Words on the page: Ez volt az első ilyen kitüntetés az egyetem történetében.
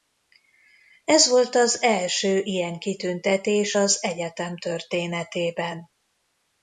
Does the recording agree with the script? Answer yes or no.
yes